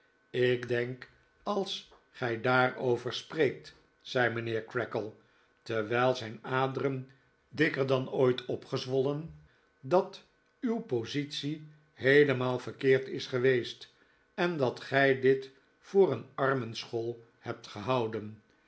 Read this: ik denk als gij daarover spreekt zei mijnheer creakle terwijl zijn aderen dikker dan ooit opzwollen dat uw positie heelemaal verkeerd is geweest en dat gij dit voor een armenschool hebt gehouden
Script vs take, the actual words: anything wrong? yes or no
no